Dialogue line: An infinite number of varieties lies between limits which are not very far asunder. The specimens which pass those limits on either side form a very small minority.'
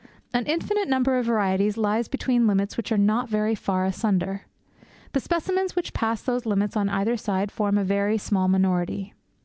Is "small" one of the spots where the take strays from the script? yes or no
no